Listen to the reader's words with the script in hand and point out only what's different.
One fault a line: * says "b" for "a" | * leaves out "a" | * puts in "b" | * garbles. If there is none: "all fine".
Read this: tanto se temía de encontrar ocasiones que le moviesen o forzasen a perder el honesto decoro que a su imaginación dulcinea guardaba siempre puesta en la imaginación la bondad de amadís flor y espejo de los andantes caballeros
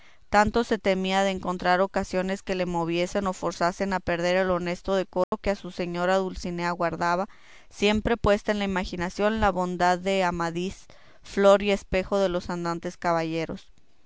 * says "señora" for "imaginación"